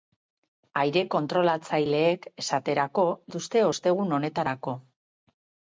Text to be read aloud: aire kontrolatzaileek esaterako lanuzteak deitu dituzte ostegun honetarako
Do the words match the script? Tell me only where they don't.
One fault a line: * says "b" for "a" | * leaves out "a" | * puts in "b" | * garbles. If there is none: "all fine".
* leaves out "lanuzteak deitu"